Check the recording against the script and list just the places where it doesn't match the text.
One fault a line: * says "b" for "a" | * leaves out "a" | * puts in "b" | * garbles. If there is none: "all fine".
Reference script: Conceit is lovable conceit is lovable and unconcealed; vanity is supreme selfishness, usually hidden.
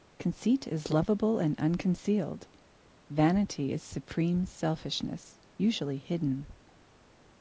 * leaves out "conceit is lovable"